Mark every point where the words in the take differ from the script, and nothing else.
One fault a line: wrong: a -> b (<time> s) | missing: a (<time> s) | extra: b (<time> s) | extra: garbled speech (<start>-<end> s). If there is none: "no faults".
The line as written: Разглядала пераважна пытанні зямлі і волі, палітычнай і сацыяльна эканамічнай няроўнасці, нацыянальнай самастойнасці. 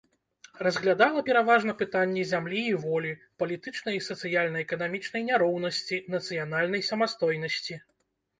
no faults